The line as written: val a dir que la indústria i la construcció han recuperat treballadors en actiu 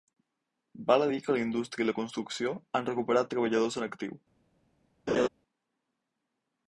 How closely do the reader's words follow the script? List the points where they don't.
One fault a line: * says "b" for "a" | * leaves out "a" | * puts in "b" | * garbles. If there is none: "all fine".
all fine